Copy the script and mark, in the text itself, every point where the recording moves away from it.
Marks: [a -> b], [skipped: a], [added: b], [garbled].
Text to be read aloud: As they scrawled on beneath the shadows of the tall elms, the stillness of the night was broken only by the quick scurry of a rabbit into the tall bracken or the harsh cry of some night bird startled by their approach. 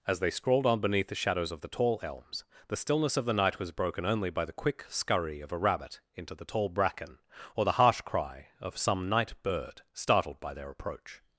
As they scrawled on beneath the shadows of the tall elms, the stillness of the night was broken only by the quick scurry of a rabbit into the tall bracken or the harsh cry of some night bird startled by their approach.